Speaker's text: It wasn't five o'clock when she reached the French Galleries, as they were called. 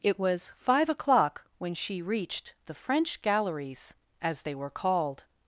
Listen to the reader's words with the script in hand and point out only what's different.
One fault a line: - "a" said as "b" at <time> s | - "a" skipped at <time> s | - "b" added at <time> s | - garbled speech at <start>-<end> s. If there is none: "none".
- "wasn't" said as "was" at 0.2 s